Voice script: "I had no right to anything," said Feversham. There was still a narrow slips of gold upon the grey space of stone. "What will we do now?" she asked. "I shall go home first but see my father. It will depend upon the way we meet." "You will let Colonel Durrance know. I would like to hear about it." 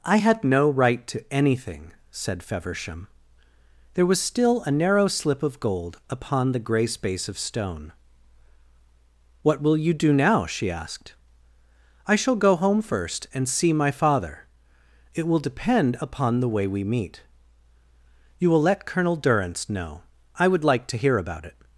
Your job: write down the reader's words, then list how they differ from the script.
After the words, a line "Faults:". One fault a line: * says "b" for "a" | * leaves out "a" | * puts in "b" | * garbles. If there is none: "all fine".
"I had no right to anything," said Feversham. There was still a narrow slip of gold upon the grey space of stone. "What will you do now?" she asked. "I shall go home first and see my father. It will depend upon the way we meet." "You will let Colonel Durrance know. I would like to hear about it."
Faults:
* says "slip" for "slips"
* says "you" for "we"
* says "and" for "but"